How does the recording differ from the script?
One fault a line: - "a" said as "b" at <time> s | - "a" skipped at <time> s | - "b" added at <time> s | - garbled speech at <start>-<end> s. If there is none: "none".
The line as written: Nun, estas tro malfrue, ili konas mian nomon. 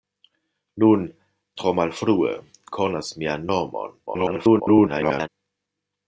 - "estas" skipped at 1.0 s
- "ili" skipped at 2.3 s
- garbled speech at 4.1-5.3 s